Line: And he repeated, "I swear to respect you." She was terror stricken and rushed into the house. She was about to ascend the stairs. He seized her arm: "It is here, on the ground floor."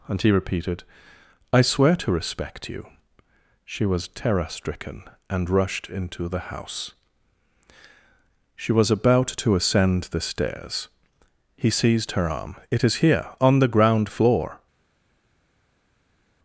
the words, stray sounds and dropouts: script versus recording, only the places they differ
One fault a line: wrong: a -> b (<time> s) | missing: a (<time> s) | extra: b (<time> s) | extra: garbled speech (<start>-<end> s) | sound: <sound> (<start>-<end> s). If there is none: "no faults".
no faults